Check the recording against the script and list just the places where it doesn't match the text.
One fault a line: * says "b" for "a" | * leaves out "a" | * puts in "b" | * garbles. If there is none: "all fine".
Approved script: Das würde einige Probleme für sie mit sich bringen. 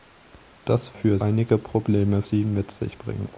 * says "für" for "würde"
* leaves out "für"